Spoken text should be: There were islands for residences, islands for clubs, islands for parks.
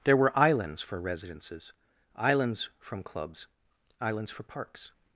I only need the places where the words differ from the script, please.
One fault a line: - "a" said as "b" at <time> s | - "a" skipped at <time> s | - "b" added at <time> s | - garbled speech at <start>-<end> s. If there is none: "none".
- "for" said as "from" at 2.8 s